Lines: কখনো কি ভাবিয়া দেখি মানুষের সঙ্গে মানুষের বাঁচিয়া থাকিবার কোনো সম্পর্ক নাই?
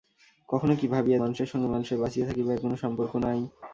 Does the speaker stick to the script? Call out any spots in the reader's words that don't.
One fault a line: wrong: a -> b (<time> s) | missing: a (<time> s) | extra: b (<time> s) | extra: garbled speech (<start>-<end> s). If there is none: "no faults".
missing: দেখি (1.2 s)